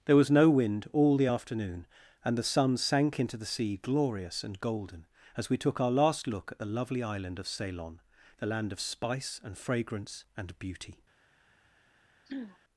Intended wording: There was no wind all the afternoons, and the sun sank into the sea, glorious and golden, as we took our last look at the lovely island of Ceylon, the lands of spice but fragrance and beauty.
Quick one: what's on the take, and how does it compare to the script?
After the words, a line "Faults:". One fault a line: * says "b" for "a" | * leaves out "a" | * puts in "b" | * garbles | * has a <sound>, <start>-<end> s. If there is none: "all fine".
There was no wind all the afternoon, and the sun sank into the sea, glorious and golden, as we took our last look at the lovely island of Ceylon, the land of spice and fragrance and beauty.
Faults:
* says "afternoon" for "afternoons"
* says "land" for "lands"
* says "and" for "but"
* has a throat clearing, 12.3-12.6 s